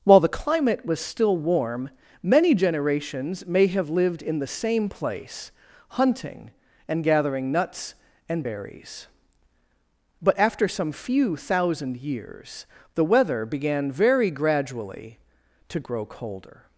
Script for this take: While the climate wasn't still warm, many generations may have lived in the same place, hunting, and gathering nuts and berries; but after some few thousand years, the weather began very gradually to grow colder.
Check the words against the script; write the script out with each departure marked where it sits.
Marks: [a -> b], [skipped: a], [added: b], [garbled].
While the climate [wasn't -> was] still warm, many generations may have lived in the same place, hunting, and gathering nuts and berries; but after some few thousand years, the weather began very gradually to grow colder.